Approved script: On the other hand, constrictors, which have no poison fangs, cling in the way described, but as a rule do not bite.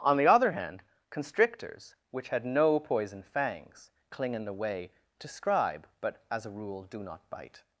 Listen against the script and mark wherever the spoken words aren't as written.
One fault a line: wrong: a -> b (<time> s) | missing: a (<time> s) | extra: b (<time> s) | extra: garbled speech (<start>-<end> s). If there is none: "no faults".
wrong: have -> had (2.3 s)
wrong: described -> describe (5.2 s)